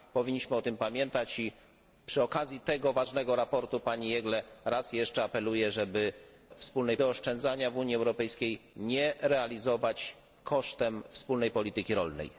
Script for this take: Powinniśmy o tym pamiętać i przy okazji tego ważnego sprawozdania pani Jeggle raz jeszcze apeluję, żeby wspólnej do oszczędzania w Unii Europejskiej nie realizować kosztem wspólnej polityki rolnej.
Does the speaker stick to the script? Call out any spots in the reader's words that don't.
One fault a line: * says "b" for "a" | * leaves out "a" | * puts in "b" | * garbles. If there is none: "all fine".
all fine